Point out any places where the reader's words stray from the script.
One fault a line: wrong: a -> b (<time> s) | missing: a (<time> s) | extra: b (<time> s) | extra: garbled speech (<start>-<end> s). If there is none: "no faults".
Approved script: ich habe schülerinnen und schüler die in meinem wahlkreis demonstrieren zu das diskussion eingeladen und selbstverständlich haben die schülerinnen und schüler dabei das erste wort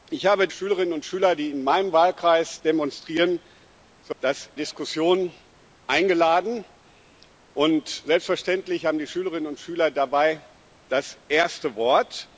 no faults